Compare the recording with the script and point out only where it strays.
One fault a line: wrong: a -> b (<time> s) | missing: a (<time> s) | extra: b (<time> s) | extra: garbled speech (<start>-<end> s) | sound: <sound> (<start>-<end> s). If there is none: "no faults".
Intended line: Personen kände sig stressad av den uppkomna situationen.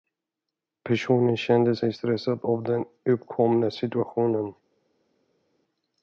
no faults